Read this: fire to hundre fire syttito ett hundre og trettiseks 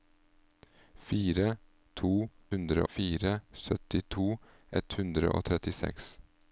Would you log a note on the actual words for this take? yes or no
no